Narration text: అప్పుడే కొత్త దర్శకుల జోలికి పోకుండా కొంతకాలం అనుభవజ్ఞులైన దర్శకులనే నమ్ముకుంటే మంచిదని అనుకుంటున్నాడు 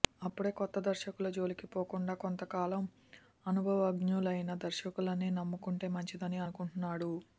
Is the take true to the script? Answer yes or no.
yes